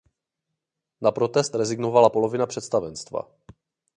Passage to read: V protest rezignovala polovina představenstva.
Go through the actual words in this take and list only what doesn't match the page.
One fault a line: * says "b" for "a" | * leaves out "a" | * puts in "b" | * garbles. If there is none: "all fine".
* says "Na" for "V"